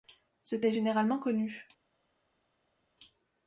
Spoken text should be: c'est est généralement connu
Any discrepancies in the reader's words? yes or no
no